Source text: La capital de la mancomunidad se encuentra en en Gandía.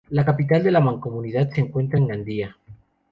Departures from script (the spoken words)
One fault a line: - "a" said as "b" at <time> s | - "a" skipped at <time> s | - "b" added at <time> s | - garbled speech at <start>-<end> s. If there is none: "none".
- "en" skipped at 2.1 s